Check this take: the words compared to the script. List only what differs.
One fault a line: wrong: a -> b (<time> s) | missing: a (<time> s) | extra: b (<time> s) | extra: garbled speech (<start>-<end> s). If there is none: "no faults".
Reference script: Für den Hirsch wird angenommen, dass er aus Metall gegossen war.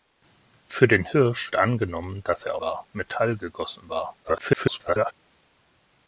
missing: wird (1.6 s)
wrong: aus -> war (2.6 s)
extra: garbled speech (4.2-5.1 s)